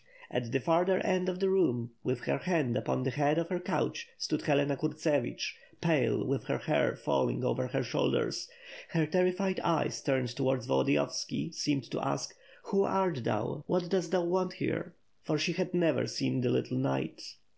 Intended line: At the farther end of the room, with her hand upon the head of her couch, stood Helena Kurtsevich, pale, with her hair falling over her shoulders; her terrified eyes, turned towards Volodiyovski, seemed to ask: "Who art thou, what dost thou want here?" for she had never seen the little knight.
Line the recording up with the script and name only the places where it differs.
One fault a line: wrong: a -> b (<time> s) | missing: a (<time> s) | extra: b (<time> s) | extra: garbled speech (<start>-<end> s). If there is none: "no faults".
no faults